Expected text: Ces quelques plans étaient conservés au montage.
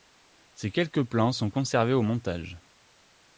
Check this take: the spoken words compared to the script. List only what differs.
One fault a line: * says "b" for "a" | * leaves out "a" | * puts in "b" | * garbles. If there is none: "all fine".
* says "sont" for "étaient"